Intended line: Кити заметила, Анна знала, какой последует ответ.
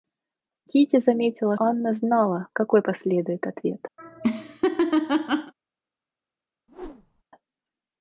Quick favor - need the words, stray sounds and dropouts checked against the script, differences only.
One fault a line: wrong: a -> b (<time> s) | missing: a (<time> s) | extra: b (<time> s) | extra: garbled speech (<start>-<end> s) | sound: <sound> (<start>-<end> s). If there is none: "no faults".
sound: laugh (4.0-5.5 s)
sound: whoosh (6.7-7.2 s)